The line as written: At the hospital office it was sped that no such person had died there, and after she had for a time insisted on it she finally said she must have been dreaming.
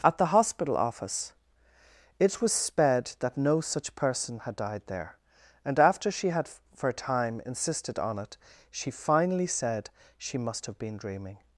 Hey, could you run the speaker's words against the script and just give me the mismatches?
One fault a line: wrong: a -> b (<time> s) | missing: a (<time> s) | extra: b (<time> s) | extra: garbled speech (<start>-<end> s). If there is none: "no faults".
no faults